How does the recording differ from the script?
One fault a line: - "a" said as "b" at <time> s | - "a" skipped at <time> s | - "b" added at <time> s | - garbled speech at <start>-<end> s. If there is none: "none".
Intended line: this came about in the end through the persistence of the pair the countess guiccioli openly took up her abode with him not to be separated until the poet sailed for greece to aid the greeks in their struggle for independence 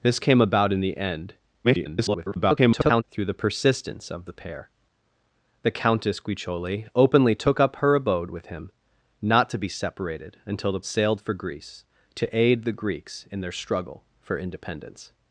- garbled speech at 1.6-3.0 s
- "poet" skipped at 10.8 s